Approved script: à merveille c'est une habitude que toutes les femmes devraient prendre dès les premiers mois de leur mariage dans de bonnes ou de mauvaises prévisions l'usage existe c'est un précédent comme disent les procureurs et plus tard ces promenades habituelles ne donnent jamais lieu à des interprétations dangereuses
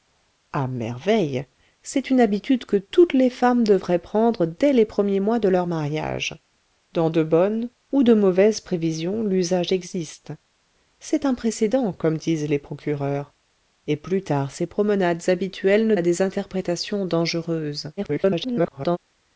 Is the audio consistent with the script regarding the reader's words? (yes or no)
no